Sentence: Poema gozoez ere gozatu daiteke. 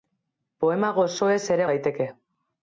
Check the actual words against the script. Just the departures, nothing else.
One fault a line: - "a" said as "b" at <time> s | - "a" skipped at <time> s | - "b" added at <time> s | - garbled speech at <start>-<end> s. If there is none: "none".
- "gozatu" skipped at 1.7 s